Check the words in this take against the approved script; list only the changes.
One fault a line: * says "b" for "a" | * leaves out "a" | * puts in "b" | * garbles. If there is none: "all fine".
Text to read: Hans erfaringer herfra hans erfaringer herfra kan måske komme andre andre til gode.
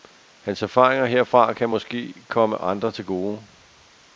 * leaves out "hans erfaringer herfra"
* leaves out "andre"